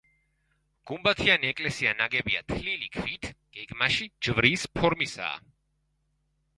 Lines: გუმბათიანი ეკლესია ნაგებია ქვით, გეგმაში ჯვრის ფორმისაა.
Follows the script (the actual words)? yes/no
no